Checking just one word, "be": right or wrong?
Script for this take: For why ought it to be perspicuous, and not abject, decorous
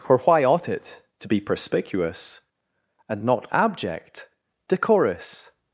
right